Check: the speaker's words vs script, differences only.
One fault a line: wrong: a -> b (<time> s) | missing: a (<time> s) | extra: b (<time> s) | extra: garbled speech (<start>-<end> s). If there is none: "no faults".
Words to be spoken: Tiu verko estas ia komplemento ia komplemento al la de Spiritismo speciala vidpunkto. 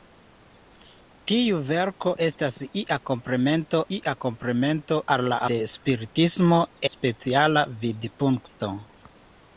no faults